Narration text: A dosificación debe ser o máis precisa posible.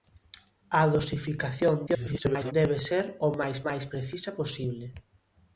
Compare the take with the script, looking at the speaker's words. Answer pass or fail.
fail